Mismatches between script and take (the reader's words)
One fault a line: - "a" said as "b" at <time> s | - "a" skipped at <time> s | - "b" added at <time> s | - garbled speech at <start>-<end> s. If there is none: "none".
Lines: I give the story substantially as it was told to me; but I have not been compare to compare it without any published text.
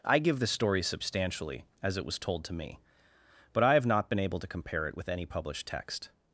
- "compare" said as "able" at 4.2 s
- "without" said as "with" at 5.0 s